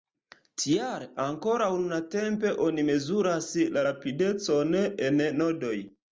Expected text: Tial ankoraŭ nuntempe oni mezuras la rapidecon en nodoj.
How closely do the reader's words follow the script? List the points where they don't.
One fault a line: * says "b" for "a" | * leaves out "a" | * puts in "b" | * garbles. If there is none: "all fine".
all fine